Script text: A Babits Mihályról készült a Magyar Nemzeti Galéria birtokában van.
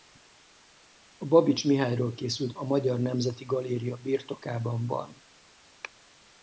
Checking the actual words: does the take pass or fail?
pass